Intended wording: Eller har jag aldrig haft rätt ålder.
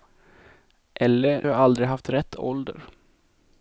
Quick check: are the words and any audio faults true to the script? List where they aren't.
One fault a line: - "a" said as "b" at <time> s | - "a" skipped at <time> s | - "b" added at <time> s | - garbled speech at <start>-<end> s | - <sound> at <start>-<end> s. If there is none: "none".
none